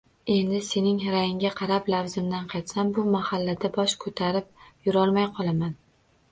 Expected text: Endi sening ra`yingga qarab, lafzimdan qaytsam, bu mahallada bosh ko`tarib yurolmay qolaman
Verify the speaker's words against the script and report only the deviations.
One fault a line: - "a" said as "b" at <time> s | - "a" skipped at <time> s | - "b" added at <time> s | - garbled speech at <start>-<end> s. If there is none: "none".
none